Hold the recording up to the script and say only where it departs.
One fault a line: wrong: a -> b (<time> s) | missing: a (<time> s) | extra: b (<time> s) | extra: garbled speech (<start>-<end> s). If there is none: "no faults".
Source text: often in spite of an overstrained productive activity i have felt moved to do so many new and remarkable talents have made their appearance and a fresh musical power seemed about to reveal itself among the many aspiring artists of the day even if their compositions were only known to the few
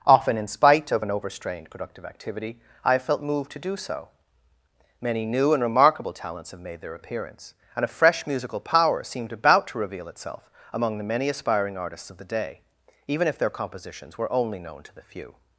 no faults